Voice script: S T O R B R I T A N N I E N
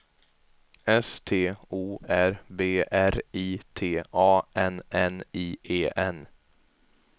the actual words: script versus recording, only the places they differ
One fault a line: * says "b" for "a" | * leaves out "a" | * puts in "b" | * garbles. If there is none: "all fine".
all fine